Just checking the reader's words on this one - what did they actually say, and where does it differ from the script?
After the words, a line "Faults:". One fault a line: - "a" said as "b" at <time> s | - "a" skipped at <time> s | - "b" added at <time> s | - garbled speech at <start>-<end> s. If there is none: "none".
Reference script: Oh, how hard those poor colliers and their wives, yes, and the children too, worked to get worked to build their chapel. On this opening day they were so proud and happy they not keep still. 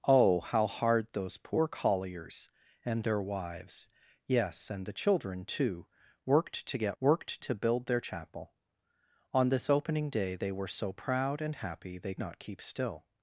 Oh, how hard those poor colliers and their wives, yes, and the children too, worked to get worked to build their chapel. On this opening day they were so proud and happy they not keep still.
Faults:
none